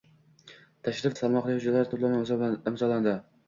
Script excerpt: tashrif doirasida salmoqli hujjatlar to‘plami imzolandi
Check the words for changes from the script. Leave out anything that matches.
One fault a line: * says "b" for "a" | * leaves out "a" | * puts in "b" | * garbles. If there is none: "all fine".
* leaves out "doirasida"